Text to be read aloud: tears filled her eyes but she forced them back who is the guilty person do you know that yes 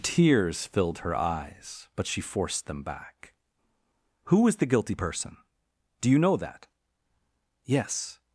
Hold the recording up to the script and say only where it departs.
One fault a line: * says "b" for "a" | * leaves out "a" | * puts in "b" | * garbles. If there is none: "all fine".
all fine